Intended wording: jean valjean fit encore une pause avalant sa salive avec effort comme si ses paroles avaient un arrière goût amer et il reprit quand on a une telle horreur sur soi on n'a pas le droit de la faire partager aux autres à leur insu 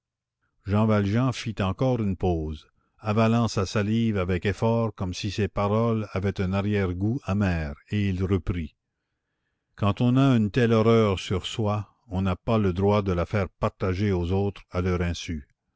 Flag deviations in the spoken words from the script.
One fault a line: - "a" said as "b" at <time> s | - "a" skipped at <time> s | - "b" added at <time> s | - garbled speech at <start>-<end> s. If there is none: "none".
none